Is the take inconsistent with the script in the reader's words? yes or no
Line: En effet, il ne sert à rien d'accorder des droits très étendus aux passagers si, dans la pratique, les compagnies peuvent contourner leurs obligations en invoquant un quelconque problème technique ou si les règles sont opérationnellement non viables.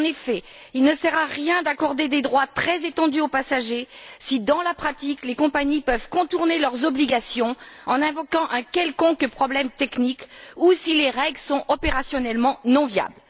no